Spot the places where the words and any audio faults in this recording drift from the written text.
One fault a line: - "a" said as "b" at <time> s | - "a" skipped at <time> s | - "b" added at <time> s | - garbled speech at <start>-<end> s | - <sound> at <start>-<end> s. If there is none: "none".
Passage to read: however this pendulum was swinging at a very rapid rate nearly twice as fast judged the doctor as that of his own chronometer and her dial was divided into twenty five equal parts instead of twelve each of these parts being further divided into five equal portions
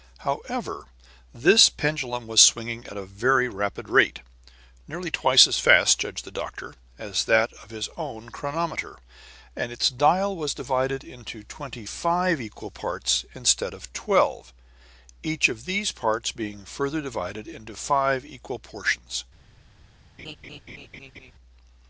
- "her" said as "its" at 9.7 s
- laugh at 20.2-21.3 s